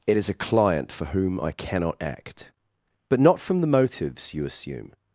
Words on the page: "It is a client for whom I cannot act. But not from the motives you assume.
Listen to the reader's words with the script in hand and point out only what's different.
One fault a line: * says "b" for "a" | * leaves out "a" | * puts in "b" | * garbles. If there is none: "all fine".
all fine